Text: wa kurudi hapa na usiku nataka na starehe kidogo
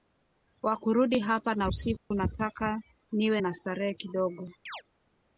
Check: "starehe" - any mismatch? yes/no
no